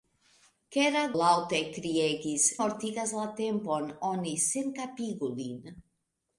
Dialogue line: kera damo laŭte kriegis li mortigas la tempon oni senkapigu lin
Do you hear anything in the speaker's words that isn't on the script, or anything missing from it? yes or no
yes